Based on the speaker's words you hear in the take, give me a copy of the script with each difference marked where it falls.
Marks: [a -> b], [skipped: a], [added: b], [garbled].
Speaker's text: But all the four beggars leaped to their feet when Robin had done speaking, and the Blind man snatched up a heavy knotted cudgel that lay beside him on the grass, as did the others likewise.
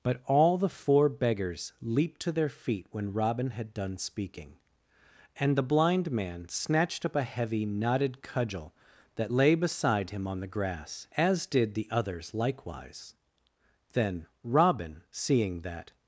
But all the four beggars leaped to their feet when Robin had done speaking, and the Blind man snatched up a heavy knotted cudgel that lay beside him on the grass, as did the others likewise. [added: Then Robin seeing that]